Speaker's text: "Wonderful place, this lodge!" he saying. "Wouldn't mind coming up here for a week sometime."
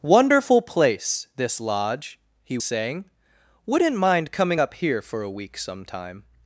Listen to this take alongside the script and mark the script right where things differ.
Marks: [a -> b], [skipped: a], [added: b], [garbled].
"Wonderful place, this lodge!" he saying. "Wouldn't mind coming up here for a week sometime."